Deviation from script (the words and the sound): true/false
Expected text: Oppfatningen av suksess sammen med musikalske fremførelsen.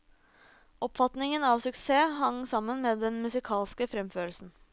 true